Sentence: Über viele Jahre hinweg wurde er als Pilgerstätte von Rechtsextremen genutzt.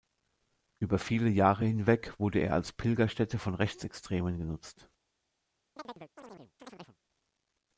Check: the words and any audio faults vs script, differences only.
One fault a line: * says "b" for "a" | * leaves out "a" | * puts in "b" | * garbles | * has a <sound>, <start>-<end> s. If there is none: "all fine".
* has a chirp, 5.8-7.0 s